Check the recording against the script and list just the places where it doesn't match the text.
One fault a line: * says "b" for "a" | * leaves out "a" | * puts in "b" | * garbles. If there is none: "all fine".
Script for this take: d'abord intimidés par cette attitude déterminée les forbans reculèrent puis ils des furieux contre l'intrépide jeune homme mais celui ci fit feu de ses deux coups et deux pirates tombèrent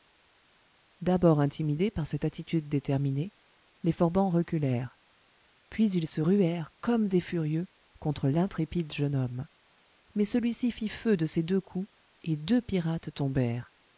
* puts in "se ruèrent comme"